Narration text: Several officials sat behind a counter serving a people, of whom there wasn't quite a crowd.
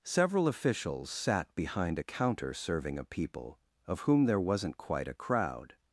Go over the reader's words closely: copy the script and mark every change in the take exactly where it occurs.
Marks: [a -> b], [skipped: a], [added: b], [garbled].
Several officials sat behind a counter serving a people, of whom there wasn't quite a crowd.